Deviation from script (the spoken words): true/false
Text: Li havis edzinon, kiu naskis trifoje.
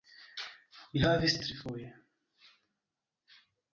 true